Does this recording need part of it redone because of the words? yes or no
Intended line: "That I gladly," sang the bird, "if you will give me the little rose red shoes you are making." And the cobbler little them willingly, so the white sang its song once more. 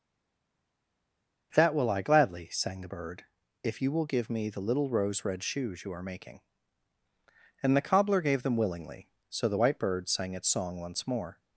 yes